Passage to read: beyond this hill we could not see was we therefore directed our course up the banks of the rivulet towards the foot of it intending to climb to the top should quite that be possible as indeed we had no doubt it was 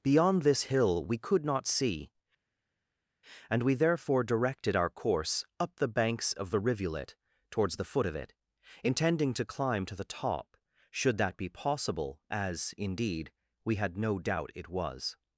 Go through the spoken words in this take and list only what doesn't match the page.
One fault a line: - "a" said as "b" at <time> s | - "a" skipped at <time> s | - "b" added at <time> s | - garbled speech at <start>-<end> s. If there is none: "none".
- "was" said as "and" at 3.5 s
- "quite" skipped at 11.2 s